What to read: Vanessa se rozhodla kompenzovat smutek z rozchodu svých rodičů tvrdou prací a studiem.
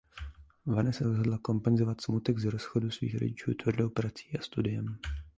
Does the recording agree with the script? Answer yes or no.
no